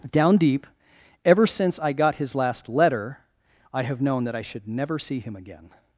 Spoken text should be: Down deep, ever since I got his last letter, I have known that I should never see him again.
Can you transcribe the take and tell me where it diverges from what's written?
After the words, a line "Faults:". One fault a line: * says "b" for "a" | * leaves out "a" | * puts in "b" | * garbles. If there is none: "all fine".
Down deep, ever since I got his last letter, I have known that I should never see him again.
Faults:
all fine